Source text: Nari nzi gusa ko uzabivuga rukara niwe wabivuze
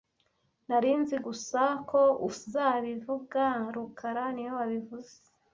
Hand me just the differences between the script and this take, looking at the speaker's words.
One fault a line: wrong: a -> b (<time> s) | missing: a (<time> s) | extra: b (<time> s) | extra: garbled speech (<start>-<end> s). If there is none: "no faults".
no faults